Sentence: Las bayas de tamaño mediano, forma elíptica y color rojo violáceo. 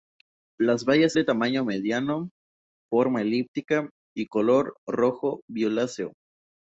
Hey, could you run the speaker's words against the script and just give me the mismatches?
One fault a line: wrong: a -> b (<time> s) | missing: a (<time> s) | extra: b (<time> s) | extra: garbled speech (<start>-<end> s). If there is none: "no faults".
no faults